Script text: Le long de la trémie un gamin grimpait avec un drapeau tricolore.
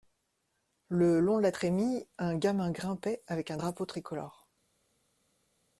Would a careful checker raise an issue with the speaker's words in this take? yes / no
no